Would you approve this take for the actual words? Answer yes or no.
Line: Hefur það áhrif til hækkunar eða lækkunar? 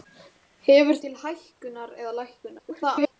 no